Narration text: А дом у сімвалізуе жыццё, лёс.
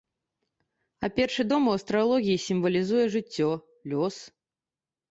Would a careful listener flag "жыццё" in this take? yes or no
no